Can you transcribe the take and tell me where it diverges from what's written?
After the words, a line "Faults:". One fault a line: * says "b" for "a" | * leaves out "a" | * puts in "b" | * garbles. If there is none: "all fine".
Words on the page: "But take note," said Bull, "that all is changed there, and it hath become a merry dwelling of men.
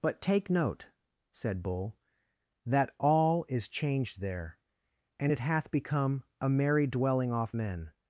"But take note," said Bull, "that all is changed there, and it hath become a merry dwelling off men.
Faults:
* says "off" for "of"